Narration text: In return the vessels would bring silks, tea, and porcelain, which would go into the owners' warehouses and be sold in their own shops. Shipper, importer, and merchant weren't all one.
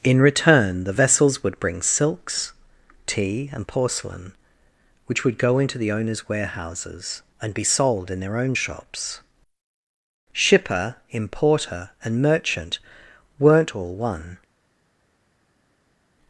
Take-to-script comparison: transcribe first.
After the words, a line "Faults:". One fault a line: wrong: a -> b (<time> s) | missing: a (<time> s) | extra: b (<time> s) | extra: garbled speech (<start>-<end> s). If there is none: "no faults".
In return the vessels would bring silks, tea, and porcelain, which would go into the owners' warehouses and be sold in their own shops. Shipper, importer, and merchant weren't all one.
Faults:
no faults